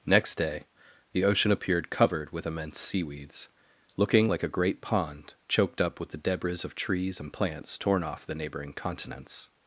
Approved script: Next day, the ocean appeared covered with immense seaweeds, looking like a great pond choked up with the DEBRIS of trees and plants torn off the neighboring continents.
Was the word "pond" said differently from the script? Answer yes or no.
no